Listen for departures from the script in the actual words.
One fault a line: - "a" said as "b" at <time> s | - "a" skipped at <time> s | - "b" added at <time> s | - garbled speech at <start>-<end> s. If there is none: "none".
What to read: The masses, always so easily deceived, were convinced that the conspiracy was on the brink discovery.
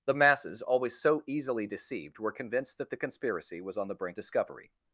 none